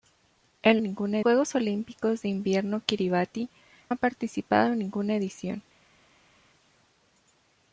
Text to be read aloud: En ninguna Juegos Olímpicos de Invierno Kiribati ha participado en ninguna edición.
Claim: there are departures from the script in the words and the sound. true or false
false